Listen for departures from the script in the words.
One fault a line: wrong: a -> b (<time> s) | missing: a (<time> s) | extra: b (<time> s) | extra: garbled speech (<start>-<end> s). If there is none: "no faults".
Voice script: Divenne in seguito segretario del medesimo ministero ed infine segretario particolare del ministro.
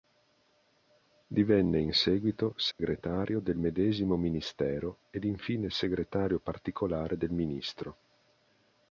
no faults